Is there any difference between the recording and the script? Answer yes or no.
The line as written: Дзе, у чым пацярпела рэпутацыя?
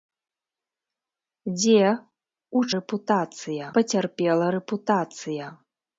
yes